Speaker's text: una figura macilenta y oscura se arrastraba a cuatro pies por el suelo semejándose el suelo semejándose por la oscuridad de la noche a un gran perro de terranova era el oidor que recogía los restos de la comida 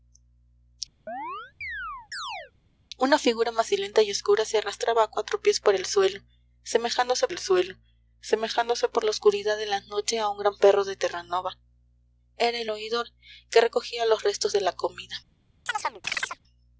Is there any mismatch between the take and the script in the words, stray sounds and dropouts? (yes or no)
yes